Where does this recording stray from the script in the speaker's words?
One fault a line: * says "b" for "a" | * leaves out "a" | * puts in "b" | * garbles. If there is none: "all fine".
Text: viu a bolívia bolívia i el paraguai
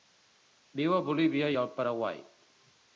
* leaves out "bolívia"